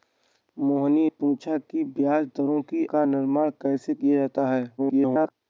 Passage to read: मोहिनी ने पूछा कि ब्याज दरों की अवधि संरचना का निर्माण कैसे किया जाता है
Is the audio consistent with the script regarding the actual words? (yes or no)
no